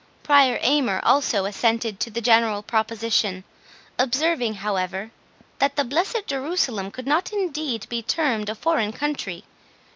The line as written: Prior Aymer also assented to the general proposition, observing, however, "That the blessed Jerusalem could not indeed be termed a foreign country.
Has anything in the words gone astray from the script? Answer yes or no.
no